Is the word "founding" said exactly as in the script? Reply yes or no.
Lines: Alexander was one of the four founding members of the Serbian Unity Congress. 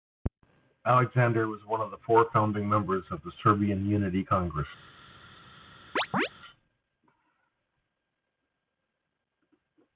yes